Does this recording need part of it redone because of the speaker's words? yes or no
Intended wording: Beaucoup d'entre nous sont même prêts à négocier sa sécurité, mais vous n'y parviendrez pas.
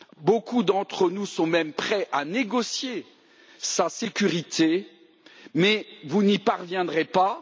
no